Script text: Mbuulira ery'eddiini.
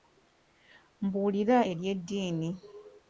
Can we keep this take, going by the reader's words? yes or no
yes